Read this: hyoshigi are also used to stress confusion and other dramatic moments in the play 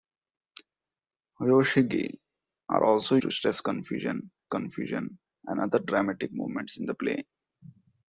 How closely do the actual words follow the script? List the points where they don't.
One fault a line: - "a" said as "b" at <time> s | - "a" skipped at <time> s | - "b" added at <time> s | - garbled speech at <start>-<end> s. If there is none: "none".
- "used" skipped at 3.2 s
- "confusion" added at 4.5 s